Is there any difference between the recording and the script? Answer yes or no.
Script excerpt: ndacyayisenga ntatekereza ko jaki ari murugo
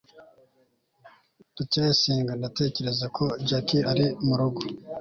no